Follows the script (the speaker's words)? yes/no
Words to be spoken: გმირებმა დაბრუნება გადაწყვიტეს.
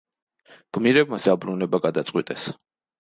yes